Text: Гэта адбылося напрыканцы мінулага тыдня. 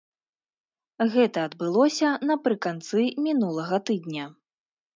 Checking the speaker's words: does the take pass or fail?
pass